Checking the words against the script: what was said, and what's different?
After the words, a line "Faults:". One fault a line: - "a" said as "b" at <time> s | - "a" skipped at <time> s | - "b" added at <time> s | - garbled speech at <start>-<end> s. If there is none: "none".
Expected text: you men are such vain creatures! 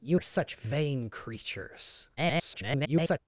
you are such vain creatures! [garbled]
Faults:
- "men" skipped at 0.2 s
- garbled speech at 2.2-3.2 s